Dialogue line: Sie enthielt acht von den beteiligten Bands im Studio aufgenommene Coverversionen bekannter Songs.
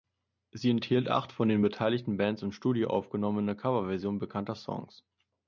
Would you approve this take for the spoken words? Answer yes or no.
yes